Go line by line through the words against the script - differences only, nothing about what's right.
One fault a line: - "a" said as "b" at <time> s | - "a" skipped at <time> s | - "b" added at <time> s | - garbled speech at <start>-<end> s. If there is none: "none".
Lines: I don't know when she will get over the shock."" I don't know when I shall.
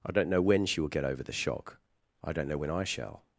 none